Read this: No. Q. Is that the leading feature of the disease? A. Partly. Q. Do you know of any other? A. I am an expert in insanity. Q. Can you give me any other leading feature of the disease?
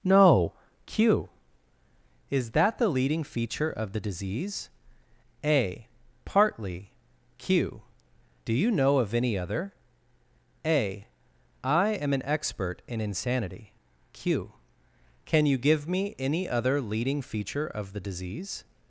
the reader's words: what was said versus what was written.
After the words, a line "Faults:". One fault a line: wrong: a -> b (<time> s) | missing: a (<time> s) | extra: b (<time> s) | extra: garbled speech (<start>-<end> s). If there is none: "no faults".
No. Q. Is that the leading feature of the disease? A. Partly. Q. Do you know of any other? A. I am an expert in insanity. Q. Can you give me any other leading feature of the disease?
Faults:
no faults